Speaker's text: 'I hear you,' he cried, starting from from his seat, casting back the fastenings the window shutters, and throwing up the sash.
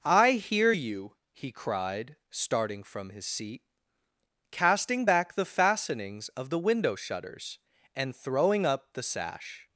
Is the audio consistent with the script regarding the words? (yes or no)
no